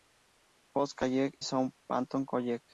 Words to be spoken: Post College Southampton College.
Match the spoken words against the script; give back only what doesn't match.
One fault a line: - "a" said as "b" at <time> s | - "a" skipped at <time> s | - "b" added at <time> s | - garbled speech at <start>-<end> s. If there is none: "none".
none